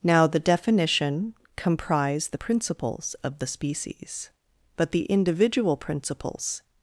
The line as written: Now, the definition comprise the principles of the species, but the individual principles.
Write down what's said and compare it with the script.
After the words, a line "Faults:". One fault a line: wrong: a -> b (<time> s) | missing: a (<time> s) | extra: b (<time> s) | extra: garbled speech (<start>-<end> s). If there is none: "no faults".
Now, the definition comprise the principles of the species, but the individual principles.
Faults:
no faults